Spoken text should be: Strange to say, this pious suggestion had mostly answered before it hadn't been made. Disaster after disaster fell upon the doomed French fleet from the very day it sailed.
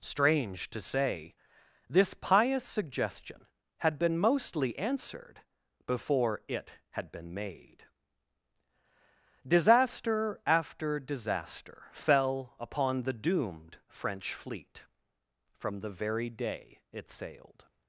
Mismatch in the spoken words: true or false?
true